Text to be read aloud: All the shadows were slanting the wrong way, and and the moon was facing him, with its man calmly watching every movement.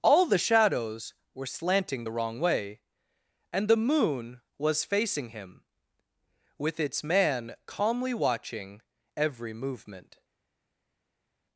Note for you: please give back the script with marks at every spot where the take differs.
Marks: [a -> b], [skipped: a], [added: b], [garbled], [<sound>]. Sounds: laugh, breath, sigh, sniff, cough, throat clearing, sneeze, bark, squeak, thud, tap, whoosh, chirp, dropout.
All the shadows were slanting the wrong way, and [skipped: and] the moon was facing him, with its man calmly watching every movement.